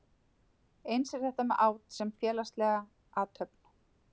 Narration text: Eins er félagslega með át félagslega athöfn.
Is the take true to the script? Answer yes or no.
no